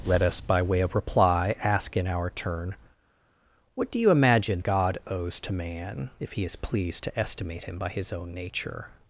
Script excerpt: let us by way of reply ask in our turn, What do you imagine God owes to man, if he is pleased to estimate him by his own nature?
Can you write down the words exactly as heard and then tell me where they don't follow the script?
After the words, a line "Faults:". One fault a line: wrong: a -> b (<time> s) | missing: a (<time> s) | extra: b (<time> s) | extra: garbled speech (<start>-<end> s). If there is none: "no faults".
let us by way of reply ask in our turn, What do you imagine God owes to man, if he is pleased to estimate him by his own nature?
Faults:
no faults